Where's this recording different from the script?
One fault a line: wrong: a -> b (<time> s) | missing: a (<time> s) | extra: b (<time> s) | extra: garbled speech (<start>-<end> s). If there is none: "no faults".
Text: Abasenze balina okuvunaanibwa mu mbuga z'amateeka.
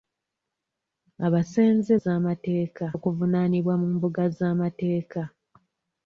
wrong: balina -> z'amateeka (2.0 s)